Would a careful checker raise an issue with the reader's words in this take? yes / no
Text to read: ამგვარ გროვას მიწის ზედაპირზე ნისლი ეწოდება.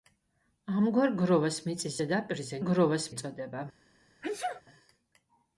yes